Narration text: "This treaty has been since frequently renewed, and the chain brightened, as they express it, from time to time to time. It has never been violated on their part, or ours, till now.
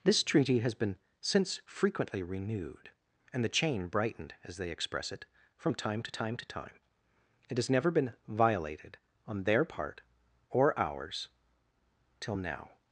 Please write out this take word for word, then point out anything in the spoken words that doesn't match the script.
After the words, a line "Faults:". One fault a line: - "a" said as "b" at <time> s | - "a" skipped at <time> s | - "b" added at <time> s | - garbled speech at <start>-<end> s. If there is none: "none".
"This treaty has been since frequently renewed, and the chain brightened, as they express it, from time to time to time. It has never been violated on their part, or ours, till now.
Faults:
none